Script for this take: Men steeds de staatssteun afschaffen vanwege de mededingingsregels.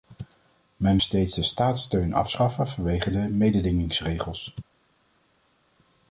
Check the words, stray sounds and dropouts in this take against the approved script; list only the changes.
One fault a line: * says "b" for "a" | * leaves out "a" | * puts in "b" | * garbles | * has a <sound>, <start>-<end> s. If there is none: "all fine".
all fine